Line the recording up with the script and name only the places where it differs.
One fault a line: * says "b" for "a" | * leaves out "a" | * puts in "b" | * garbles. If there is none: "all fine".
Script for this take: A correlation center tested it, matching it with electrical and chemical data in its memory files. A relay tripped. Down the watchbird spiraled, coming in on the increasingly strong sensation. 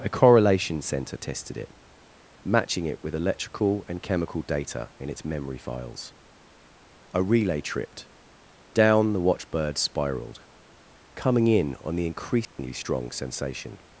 all fine